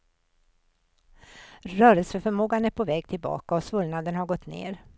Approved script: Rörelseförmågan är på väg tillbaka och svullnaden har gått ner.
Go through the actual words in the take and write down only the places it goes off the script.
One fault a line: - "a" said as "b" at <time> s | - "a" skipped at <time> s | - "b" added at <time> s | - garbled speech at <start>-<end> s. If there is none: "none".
none